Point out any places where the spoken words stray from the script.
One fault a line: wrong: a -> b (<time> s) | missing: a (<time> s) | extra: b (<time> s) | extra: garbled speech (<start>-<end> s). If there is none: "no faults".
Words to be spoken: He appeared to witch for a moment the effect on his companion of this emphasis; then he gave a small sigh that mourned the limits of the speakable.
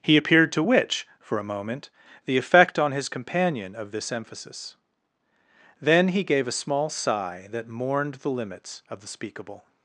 no faults